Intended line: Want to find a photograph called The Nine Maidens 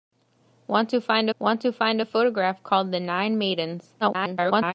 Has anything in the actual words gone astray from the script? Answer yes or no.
yes